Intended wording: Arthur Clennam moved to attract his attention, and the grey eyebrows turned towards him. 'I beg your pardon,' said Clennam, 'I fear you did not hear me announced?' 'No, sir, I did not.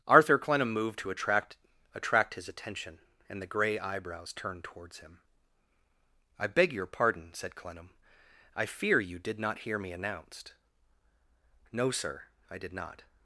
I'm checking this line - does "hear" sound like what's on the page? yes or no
yes